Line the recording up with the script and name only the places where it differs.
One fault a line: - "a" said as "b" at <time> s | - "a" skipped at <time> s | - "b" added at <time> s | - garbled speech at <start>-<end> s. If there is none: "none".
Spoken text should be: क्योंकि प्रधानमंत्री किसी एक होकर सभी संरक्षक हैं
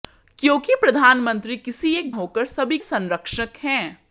none